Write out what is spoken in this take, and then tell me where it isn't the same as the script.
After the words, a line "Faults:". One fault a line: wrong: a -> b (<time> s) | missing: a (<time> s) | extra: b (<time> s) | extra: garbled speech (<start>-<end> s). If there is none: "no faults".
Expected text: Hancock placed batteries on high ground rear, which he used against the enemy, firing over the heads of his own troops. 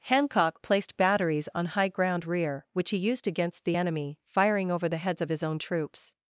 Hancock placed batteries on high ground rear, which he used against the enemy, firing over the heads of his own troops.
Faults:
no faults